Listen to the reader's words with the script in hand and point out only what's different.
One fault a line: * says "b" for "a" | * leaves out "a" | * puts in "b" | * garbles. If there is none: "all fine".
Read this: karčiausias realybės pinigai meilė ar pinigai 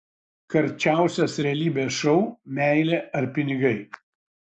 * says "šou" for "pinigai"